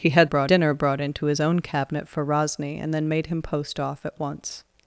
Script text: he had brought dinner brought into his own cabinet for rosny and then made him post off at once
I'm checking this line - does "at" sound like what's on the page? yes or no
yes